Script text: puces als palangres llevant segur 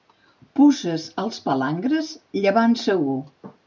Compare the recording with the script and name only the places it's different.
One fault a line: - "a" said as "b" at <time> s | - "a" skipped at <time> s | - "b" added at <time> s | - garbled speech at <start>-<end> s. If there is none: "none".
none